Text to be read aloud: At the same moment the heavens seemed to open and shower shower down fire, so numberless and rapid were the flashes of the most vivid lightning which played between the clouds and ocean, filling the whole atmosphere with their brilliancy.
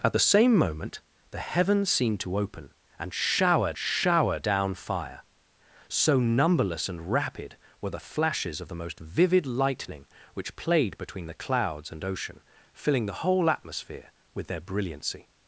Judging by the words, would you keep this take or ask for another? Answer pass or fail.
pass